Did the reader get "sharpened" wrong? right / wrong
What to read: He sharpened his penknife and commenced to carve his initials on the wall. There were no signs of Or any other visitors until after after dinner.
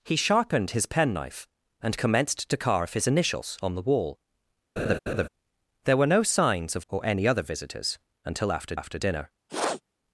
right